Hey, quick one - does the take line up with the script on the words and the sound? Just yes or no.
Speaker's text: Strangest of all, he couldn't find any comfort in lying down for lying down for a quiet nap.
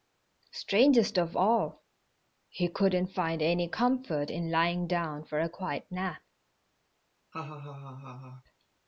no